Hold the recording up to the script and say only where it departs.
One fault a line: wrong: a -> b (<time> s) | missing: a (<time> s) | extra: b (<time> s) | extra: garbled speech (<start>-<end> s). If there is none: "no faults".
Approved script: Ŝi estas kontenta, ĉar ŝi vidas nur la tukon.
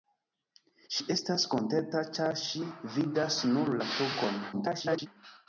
extra: garbled speech (4.5-5.1 s)